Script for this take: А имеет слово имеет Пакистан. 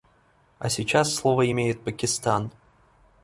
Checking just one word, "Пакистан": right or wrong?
right